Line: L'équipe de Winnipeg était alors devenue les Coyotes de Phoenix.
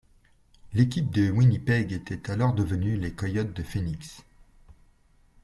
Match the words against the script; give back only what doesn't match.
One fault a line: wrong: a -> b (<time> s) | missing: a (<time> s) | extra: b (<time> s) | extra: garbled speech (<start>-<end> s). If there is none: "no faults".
no faults